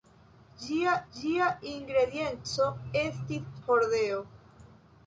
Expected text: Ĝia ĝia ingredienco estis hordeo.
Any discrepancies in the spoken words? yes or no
no